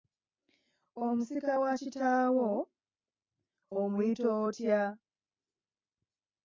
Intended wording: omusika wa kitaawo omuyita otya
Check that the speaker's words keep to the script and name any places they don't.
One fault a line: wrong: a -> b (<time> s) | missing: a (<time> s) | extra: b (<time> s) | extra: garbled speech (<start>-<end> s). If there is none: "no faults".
no faults